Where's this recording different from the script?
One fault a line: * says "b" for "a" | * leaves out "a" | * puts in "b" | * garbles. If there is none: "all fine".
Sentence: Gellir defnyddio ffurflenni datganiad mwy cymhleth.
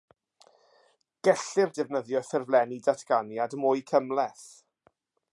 all fine